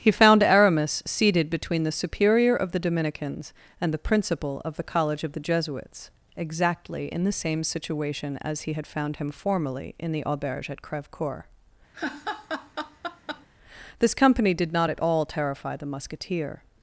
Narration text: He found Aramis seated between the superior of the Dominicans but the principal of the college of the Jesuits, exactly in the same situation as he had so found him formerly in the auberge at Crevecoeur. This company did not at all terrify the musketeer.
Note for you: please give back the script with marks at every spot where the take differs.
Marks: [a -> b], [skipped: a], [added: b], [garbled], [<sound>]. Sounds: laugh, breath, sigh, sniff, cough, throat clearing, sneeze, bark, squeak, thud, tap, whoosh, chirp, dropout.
He found Aramis seated between the superior of the Dominicans [but -> and] the principal of the college of the Jesuits, exactly in the same situation as he had [skipped: so] found him formerly in the auberge at Crevecoeur. [laugh] This company did not at all terrify the musketeer.